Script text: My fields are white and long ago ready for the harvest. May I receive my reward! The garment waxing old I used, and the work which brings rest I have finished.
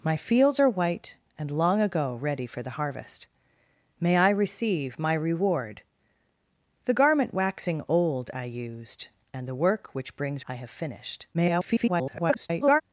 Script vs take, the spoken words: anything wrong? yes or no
yes